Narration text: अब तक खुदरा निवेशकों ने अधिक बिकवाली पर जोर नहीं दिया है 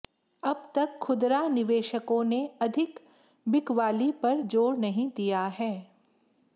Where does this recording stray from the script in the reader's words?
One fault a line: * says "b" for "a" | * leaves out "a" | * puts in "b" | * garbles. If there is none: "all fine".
all fine